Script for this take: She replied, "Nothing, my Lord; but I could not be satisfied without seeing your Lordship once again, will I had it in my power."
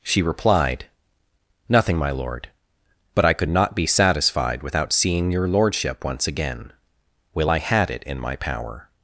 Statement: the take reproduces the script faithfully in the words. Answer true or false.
true